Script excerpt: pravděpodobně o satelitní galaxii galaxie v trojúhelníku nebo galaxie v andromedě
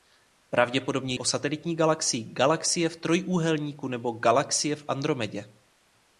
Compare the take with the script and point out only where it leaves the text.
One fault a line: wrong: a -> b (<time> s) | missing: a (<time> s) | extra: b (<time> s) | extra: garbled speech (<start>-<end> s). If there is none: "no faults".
no faults